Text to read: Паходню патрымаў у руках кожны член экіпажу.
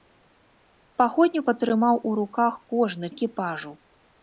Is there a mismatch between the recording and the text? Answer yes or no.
yes